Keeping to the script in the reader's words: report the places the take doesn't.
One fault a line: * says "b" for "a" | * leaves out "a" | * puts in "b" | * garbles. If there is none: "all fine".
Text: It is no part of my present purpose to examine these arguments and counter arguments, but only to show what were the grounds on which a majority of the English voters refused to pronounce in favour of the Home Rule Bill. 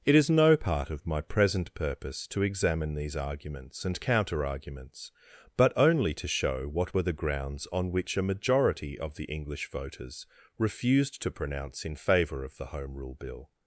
all fine